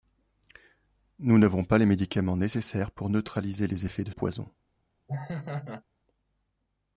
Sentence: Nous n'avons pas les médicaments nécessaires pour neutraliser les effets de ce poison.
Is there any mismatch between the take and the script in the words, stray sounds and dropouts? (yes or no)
yes